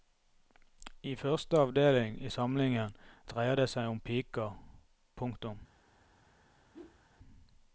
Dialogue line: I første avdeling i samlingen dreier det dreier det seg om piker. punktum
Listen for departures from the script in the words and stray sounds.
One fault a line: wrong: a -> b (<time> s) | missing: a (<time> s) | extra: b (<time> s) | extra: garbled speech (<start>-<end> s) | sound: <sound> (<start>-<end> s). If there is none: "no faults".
missing: dreier det (3.7 s)
sound: whoosh (6.7-7.0 s)